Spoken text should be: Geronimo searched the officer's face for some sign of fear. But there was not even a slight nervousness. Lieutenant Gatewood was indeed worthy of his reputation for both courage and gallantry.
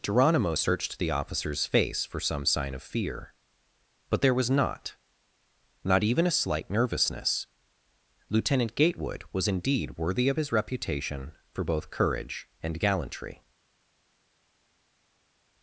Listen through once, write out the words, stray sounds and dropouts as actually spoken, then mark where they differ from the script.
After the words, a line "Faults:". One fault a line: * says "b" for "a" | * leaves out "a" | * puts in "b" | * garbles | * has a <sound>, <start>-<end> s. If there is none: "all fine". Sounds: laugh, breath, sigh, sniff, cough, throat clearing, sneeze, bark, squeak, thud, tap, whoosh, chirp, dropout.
Geronimo searched the officer's face for some sign of fear. But there was not not even a slight nervousness. Lieutenant Gatewood was indeed worthy of his reputation for both courage and gallantry.
Faults:
* puts in "not"